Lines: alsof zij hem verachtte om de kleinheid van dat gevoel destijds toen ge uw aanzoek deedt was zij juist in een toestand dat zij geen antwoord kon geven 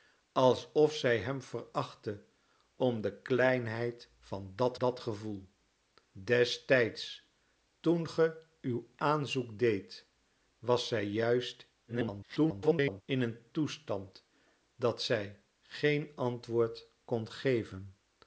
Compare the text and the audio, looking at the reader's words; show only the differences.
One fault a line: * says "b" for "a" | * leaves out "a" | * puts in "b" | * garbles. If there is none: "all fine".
* puts in "dat"
* garbles